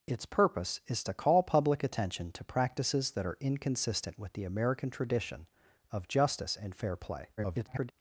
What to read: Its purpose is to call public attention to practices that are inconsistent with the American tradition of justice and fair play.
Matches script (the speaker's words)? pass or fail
fail